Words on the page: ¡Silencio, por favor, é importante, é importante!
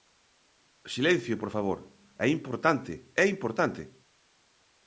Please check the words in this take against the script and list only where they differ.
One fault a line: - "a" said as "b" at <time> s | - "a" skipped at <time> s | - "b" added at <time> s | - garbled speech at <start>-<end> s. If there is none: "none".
none